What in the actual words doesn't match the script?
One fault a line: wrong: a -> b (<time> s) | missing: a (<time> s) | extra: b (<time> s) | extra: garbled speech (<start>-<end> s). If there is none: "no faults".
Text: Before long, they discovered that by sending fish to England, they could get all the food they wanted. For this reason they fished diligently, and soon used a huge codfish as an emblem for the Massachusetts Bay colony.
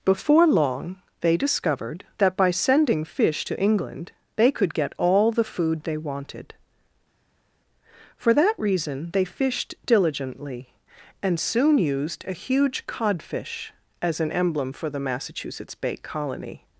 wrong: this -> that (8.3 s)